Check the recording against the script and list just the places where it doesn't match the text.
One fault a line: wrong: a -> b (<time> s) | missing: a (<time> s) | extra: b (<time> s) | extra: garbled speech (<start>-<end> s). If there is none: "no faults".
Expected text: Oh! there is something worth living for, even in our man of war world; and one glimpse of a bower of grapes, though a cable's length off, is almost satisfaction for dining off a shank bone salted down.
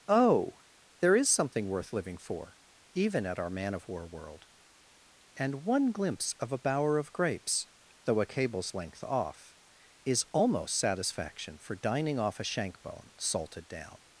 wrong: in -> at (3.2 s)